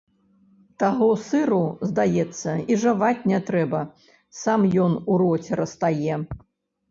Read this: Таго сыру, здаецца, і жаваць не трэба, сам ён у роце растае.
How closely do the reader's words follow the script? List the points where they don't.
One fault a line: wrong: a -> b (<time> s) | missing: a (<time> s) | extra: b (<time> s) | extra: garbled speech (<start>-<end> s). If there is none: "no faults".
no faults